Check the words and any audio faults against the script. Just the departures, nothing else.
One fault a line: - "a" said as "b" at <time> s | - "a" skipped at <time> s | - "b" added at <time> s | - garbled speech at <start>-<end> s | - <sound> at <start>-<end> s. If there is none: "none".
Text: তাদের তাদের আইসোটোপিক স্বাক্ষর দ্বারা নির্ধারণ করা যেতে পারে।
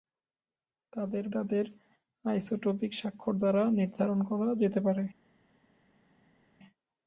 none